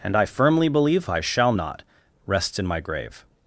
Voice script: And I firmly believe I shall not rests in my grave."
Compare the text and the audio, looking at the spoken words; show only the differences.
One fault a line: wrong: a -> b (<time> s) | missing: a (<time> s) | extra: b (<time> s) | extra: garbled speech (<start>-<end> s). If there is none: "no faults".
no faults